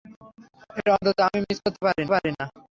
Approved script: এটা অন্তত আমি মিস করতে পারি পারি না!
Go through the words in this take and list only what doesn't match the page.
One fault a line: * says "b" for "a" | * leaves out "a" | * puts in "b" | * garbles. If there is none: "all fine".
all fine